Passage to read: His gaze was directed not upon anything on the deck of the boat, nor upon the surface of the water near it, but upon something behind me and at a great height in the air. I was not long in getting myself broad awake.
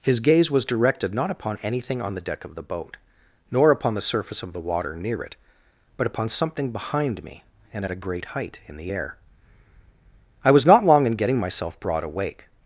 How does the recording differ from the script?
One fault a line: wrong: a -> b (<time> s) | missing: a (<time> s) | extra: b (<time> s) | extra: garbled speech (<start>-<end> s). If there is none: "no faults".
no faults